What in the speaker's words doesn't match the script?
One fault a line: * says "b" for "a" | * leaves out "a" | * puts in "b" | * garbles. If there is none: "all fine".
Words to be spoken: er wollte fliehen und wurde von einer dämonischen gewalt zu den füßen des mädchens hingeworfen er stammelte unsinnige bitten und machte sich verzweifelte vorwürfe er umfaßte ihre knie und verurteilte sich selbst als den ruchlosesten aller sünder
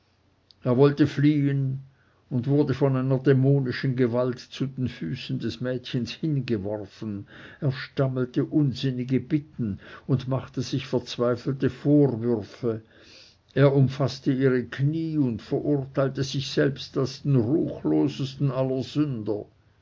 all fine